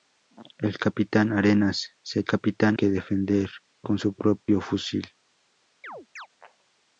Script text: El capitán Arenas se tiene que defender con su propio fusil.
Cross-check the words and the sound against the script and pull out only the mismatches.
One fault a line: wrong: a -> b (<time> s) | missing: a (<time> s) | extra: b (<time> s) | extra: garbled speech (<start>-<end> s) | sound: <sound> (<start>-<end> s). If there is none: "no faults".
wrong: tiene -> capitán (2.3 s)
sound: dropout (4.4-4.5 s)
sound: chirp (5.8-6.3 s)